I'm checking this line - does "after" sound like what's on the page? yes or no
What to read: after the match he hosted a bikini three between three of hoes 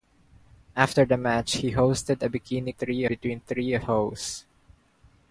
yes